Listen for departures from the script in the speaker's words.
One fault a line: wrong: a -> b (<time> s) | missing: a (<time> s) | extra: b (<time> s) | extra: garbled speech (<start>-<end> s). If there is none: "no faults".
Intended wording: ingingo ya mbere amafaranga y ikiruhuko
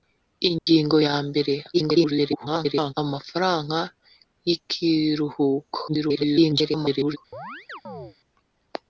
extra: garbled speech (1.7-2.9 s)
extra: garbled speech (5.9-7.2 s)